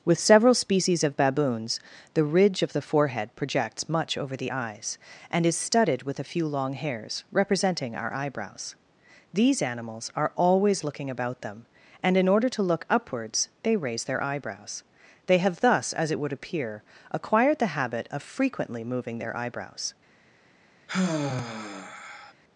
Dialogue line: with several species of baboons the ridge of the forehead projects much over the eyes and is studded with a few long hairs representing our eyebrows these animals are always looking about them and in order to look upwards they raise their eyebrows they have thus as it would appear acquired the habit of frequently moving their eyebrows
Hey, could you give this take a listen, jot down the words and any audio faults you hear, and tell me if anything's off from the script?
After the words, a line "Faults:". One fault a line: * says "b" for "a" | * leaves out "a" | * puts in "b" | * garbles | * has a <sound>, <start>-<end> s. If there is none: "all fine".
with several species of baboons the ridge of the forehead projects much over the eyes and is studded with a few long hairs representing our eyebrows these animals are always looking about them and in order to look upwards they raise their eyebrows they have thus as it would appear acquired the habit of frequently moving their eyebrows
Faults:
* has a sigh, 20.9-22.3 s